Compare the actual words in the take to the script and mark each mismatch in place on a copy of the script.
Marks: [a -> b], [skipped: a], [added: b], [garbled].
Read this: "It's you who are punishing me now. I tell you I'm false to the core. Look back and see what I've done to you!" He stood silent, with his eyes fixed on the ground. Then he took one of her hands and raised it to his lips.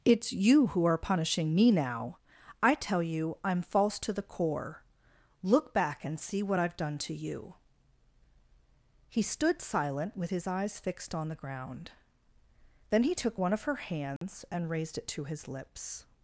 "It's you who are punishing me now. I tell you I'm false to the core. Look back and see what I've done to you!" He stood silent, with his eyes fixed on the ground. Then he took one of her hands and raised it to his lips.